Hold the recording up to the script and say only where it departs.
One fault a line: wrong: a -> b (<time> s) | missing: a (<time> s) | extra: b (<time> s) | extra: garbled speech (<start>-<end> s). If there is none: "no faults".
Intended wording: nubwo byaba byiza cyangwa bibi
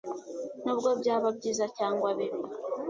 no faults